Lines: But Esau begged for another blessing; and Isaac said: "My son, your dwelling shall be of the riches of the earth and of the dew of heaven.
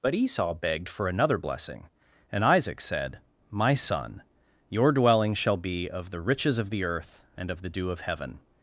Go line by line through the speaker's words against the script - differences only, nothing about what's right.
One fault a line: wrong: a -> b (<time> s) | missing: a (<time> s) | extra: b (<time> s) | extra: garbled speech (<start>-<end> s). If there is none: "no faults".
no faults